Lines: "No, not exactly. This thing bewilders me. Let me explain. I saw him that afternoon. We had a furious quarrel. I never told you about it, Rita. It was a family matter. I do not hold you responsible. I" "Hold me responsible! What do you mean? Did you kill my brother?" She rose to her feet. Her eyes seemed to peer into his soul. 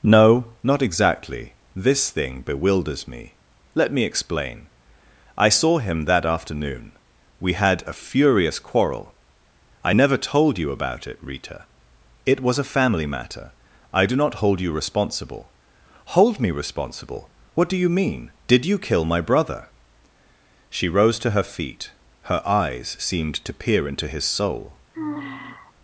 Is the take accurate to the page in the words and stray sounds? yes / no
no